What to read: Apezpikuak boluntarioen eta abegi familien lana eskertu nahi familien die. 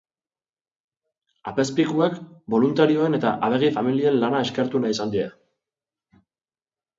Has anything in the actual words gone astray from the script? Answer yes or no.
yes